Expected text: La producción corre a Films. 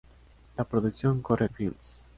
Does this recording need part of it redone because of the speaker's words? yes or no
no